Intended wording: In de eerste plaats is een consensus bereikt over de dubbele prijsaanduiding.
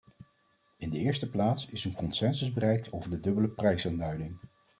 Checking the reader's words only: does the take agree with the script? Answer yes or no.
yes